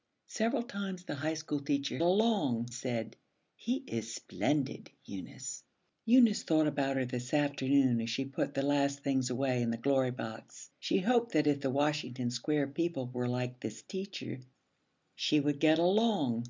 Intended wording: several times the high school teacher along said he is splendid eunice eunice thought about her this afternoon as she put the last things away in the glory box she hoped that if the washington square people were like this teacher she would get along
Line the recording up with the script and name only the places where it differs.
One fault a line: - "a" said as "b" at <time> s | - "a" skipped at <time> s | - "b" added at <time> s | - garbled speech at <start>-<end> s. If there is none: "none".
none